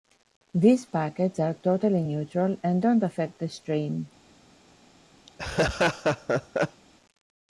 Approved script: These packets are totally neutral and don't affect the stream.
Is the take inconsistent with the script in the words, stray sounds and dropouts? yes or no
yes